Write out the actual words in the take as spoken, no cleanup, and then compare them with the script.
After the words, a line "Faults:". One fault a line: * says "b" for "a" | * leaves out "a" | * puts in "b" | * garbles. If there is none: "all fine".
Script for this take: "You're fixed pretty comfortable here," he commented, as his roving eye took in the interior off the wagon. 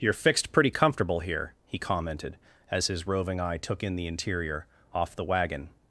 "You're fixed pretty comfortable here," he commented, as his roving eye took in the interior off the wagon.
Faults:
all fine